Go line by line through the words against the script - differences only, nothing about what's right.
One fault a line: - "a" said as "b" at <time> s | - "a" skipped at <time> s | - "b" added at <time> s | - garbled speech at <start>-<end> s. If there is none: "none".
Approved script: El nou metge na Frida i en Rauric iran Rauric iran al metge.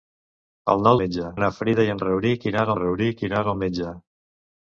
none